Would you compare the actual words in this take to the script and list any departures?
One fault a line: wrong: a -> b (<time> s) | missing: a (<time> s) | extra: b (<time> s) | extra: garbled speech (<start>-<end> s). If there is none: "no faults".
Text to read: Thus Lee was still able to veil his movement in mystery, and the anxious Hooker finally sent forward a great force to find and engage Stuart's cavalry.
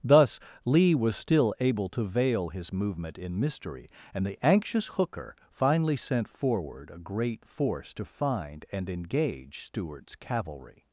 no faults